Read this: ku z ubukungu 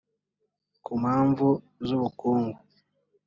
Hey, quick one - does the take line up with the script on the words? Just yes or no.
no